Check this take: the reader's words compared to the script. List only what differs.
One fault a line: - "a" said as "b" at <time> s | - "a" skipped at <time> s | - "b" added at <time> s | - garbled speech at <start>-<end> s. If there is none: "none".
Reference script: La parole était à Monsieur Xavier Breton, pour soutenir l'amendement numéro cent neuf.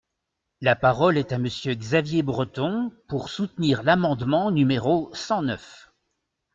- "était" said as "est" at 1.2 s